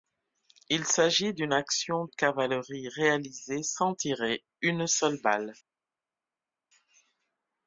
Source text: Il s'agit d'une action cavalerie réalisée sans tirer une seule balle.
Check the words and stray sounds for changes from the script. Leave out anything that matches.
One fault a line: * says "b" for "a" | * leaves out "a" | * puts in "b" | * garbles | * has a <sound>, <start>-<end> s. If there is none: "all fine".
all fine